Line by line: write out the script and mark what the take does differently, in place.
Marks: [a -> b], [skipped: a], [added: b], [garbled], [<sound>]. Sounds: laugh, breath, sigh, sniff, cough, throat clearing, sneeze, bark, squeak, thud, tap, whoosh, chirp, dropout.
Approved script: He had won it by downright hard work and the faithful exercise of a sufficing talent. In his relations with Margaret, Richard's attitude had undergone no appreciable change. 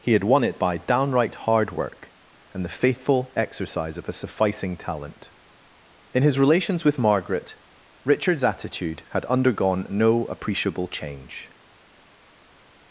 He had won it by downright hard work and the faithful exercise of a sufficing talent. In his relations with Margaret, Richard's attitude had undergone no appreciable change.